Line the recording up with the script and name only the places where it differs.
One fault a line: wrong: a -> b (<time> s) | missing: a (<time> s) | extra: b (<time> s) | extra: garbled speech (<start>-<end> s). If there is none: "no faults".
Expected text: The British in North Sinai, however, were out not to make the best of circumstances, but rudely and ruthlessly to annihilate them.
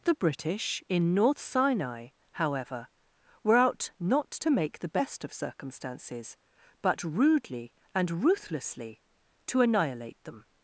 no faults